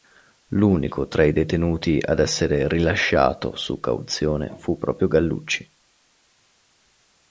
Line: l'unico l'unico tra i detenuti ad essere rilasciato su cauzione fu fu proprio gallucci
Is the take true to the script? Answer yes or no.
no